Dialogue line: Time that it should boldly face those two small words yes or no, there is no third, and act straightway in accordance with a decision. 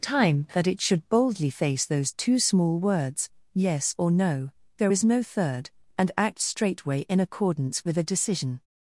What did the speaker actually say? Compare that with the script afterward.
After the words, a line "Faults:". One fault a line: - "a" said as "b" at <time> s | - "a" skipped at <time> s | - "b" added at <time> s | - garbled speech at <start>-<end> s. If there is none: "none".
Time that it should boldly face those two small words yes or no, there is no third, and act straightway in accordance with a decision.
Faults:
none